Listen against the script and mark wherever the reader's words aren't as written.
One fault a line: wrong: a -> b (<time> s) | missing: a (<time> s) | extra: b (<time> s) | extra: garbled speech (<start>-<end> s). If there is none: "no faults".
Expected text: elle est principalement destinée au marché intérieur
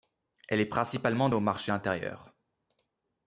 missing: destinée (1.3 s)